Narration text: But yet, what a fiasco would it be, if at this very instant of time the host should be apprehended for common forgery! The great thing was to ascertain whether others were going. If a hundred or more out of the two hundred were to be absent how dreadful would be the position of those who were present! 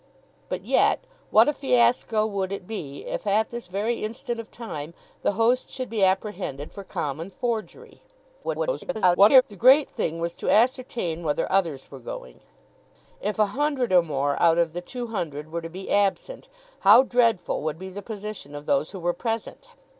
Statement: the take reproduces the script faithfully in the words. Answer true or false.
false